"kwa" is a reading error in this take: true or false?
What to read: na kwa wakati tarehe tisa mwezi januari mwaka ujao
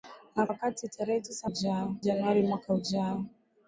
true